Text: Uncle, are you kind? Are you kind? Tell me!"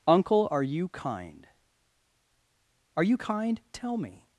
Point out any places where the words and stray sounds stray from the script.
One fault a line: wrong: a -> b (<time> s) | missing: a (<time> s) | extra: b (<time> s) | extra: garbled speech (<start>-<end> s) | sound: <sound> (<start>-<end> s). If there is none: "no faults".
no faults